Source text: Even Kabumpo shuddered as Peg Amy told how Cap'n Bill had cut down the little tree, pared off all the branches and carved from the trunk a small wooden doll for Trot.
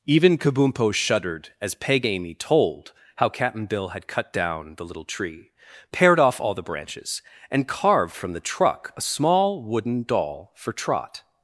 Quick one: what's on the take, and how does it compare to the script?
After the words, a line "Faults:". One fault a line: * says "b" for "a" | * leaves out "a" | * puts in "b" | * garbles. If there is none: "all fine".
Even Kabumpo shuddered as Peg Amy told how Cap'n Bill had cut down the little tree, pared off all the branches and carved from the truck a small wooden doll for Trot.
Faults:
* says "truck" for "trunk"